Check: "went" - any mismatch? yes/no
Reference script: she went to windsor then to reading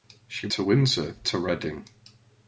yes